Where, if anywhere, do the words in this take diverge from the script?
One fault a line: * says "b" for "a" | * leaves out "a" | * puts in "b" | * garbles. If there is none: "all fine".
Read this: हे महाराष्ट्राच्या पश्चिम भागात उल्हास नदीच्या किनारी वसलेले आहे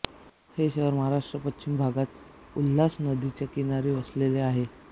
* puts in "शहर"